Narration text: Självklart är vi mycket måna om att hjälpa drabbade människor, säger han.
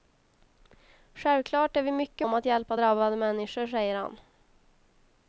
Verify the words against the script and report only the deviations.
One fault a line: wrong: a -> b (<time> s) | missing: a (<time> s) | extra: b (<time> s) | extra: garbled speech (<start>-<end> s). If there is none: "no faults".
missing: måna (2.3 s)